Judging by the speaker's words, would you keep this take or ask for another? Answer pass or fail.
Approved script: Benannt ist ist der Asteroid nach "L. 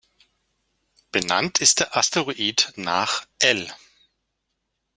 fail